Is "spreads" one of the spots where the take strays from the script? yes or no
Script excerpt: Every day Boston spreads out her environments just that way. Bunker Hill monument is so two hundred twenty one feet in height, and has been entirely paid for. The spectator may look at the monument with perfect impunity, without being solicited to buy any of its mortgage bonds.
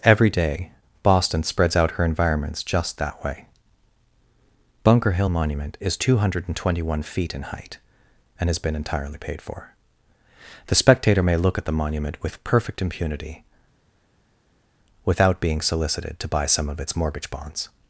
no